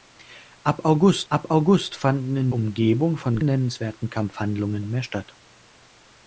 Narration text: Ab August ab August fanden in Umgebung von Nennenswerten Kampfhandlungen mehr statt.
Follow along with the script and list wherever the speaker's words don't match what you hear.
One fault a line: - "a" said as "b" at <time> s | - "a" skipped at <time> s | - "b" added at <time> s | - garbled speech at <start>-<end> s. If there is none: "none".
none